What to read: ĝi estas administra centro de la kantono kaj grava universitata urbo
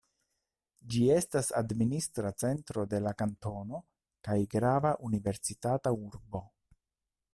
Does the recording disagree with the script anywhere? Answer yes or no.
no